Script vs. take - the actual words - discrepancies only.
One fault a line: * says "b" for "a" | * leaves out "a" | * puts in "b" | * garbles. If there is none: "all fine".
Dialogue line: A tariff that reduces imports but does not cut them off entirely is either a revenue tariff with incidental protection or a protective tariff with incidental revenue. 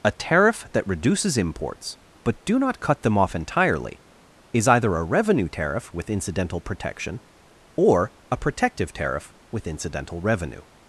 * says "do" for "does"